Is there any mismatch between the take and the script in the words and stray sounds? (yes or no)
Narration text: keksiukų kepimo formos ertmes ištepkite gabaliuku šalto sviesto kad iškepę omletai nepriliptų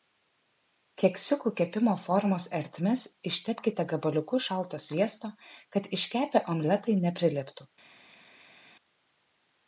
no